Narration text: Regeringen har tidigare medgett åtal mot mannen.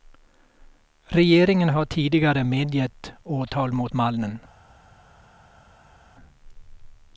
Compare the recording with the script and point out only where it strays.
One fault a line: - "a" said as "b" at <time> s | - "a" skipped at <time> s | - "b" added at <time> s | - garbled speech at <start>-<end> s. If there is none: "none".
none